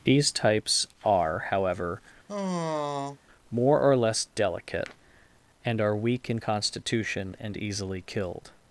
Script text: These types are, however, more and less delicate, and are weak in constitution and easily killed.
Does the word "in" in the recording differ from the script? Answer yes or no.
no